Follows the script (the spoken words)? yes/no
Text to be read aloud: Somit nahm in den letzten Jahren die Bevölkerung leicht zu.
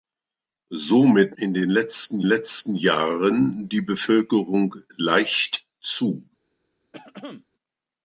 no